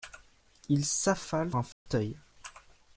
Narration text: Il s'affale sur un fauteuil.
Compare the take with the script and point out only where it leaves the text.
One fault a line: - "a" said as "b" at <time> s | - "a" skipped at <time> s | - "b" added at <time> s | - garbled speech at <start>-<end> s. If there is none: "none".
- "sur" skipped at 1.5 s